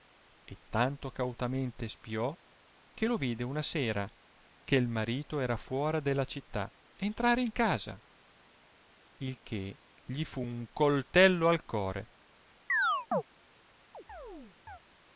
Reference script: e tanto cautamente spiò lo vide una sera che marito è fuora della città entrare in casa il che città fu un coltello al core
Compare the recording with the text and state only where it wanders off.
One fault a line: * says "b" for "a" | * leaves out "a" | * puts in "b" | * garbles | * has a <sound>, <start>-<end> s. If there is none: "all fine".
* puts in "che"
* says "era" for "è"
* says "gli" for "città"
* has a chirp, 12.7-13.2 s
* has a chirp, 13.9-14.8 s